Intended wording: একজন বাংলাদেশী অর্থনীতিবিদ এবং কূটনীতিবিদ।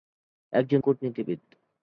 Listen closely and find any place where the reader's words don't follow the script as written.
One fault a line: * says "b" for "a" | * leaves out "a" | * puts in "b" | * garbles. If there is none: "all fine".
* leaves out "বাংলাদেশী অর্থনীতিবিদ এবং"